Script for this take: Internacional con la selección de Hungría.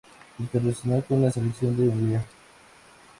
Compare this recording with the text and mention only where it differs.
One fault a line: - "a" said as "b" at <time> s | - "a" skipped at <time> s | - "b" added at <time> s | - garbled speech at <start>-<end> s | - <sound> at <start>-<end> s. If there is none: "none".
none